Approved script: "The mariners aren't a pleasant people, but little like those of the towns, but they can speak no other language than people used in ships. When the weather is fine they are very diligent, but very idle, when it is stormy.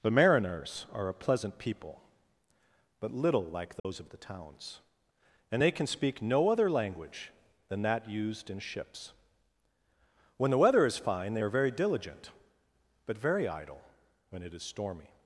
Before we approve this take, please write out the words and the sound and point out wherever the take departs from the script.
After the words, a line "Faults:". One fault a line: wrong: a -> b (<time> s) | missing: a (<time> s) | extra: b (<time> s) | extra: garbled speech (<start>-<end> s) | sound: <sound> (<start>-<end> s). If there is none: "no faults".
"The mariners are a pleasant people, but little like those of the towns, and they can speak no other language than that used in ships. When the weather is fine they are very diligent, but very idle, when it is stormy.
Faults:
wrong: aren't -> are (0.9 s)
sound: dropout (3.8-3.8 s)
wrong: but -> and (5.5 s)
wrong: people -> that (7.8 s)